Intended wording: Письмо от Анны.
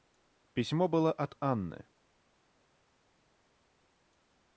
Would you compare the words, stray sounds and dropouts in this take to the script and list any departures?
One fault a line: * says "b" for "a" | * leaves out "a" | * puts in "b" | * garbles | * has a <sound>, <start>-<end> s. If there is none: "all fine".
* puts in "было"